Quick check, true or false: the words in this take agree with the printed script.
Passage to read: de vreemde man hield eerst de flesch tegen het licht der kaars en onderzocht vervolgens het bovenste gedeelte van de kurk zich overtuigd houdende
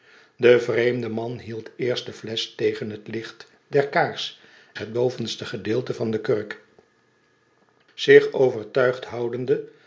false